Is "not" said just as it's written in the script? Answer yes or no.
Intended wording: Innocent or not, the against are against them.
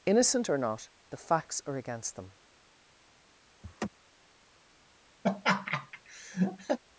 yes